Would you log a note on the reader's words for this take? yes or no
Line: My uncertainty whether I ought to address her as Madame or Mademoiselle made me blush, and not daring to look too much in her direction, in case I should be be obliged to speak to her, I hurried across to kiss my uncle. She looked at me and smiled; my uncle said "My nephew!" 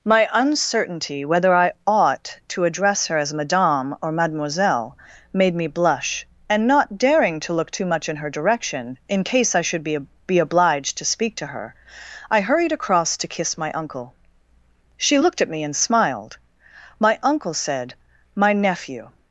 no